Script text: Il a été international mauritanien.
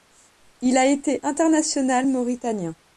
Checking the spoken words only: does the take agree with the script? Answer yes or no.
yes